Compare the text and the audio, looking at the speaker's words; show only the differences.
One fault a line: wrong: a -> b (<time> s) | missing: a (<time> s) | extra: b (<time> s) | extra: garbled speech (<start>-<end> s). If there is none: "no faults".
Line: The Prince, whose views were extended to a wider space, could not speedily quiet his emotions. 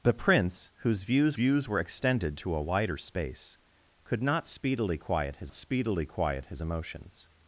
extra: views (1.3 s)
extra: speedily quiet his (5.5 s)